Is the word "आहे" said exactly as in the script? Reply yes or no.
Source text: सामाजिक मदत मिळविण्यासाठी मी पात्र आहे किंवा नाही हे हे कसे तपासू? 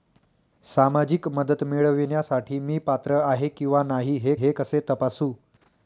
yes